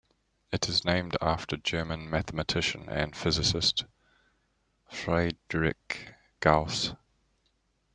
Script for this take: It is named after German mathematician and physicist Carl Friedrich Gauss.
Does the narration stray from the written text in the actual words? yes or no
yes